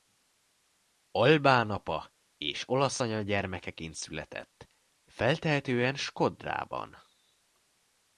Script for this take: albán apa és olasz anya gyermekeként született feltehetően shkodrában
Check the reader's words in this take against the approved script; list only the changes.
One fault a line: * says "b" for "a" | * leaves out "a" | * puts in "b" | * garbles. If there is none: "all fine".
all fine